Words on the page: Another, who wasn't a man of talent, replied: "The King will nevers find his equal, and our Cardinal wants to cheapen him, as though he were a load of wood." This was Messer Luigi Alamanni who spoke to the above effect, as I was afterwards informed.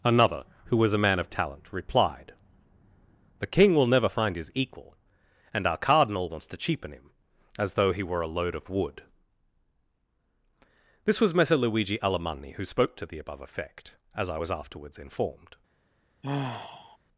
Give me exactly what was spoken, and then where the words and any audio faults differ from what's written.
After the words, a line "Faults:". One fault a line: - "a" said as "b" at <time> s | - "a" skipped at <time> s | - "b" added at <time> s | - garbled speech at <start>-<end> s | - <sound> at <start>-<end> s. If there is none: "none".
Another, who was a man of talent, replied: "The King will never find his equal, and our Cardinal wants to cheapen him, as though he were a load of wood." This was Messer Luigi Alamanni who spoke to the above effect, as I was afterwards informed.
Faults:
- "wasn't" said as "was" at 0.8 s
- "nevers" said as "never" at 3.9 s
- sigh at 16.2-17.0 s